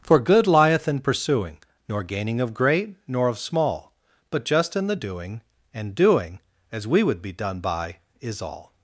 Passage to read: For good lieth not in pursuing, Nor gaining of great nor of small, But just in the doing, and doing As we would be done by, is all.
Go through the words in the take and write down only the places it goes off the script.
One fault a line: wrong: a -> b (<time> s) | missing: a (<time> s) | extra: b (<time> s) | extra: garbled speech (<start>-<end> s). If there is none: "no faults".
missing: not (0.9 s)